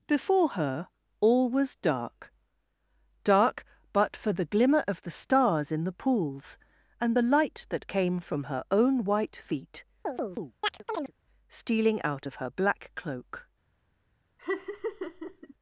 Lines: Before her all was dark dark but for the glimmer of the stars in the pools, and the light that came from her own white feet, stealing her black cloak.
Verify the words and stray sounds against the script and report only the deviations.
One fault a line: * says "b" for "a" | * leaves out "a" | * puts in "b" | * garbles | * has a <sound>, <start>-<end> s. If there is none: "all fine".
* has a chirp, 10.1-11.1 s
* puts in "out of"
* has a laugh, 14.4-15.5 s